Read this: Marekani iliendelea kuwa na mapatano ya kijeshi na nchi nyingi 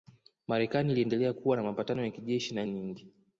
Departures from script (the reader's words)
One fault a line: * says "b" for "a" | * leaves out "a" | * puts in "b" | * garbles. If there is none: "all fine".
* leaves out "nchi"